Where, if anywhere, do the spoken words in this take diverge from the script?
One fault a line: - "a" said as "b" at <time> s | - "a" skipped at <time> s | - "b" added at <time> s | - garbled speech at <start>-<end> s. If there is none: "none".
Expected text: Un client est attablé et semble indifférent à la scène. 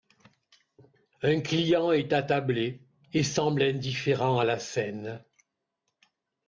none